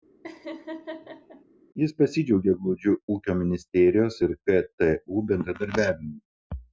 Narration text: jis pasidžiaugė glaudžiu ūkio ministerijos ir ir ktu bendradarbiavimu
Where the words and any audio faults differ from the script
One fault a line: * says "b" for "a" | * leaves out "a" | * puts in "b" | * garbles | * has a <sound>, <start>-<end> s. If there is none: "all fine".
* has a laugh, 0.2-1.4 s
* leaves out "ir"